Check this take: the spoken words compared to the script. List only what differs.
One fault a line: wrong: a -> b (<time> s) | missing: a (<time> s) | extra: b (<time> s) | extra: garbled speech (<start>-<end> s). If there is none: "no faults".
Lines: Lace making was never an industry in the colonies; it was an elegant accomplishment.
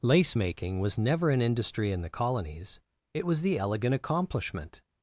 wrong: an -> the (3.4 s)